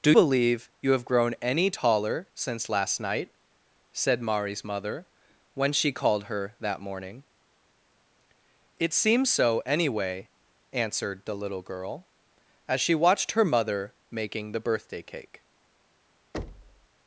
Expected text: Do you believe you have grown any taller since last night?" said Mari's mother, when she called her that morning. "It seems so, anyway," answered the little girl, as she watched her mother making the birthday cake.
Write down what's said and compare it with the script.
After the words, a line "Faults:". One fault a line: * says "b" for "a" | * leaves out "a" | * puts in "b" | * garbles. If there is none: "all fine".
Do believe you have grown any taller since last night?" said Mari's mother, when she called her that morning. "It seems so, anyway," answered the little girl, as she watched her mother making the birthday cake.
Faults:
* leaves out "you"